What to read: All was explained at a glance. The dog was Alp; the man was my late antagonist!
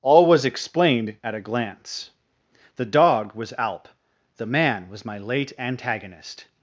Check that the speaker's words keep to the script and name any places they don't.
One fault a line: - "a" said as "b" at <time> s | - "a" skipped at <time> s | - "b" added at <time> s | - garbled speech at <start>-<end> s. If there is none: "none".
none